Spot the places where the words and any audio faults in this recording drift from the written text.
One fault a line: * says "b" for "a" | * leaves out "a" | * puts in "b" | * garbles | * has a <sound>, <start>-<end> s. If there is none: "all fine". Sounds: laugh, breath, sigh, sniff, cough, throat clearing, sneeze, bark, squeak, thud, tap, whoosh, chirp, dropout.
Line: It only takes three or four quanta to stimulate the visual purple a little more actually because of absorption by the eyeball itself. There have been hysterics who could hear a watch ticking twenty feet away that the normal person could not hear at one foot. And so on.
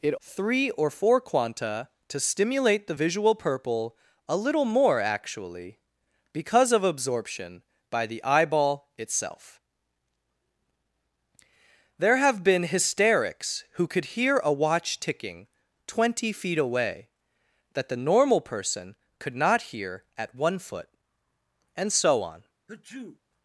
* leaves out "only takes"
* has a sneeze, 22.7-23.2 s